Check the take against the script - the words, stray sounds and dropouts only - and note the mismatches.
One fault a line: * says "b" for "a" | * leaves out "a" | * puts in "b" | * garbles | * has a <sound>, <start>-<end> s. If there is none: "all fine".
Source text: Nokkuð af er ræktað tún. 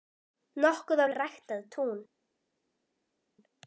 all fine